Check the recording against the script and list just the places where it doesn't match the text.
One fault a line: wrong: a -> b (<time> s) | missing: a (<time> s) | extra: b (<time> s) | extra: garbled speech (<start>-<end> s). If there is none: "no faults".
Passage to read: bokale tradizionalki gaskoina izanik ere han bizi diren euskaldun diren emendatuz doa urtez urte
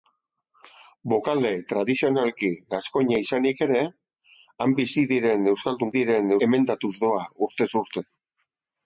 no faults